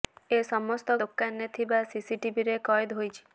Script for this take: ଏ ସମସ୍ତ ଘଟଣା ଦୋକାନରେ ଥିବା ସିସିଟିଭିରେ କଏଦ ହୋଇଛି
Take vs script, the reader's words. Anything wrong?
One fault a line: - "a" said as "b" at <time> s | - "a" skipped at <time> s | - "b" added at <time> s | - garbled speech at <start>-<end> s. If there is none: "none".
- "ଘଟଣା" skipped at 0.9 s